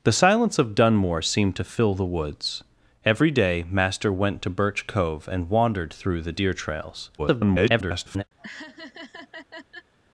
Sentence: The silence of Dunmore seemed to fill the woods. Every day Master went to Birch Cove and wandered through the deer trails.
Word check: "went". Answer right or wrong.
right